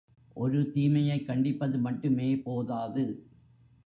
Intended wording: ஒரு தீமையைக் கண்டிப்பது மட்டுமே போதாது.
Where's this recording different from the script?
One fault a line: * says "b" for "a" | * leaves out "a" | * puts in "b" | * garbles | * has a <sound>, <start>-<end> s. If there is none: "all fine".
all fine